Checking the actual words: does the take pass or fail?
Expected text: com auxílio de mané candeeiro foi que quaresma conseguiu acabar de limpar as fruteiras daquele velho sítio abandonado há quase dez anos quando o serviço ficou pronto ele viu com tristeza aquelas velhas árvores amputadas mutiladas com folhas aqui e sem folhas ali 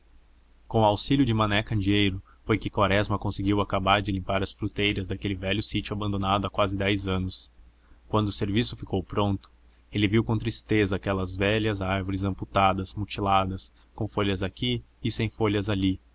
pass